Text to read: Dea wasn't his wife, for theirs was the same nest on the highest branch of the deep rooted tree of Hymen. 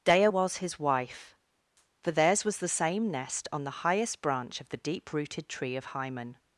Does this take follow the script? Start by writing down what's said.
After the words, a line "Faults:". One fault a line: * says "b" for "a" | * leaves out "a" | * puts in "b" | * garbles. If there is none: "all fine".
Dea was his wife, for theirs was the same nest on the highest branch of the deep rooted tree of Hymen.
Faults:
* says "was" for "wasn't"